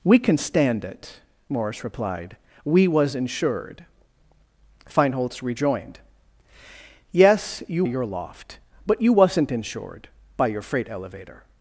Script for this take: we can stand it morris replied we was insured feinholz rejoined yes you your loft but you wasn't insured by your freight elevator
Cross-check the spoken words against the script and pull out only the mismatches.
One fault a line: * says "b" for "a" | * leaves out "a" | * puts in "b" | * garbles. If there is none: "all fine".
all fine